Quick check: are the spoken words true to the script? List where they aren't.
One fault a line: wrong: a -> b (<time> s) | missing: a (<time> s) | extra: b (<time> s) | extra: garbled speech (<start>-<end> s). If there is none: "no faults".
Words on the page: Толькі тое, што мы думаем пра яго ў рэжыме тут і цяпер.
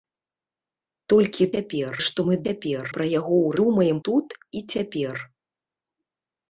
wrong: тое -> цяпер (1.6 s)
wrong: думаем -> цяпер (2.5 s)
wrong: рэжыме -> думаем (3.6 s)